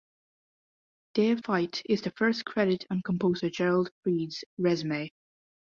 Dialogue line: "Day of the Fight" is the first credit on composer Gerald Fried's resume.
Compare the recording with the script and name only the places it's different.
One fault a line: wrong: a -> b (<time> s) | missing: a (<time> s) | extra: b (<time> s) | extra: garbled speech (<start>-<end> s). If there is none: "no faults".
missing: the (1.4 s)